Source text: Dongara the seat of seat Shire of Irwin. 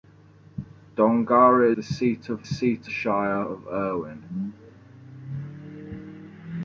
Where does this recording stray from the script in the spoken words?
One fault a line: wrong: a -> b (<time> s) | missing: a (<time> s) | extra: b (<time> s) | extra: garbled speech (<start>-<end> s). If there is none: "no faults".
no faults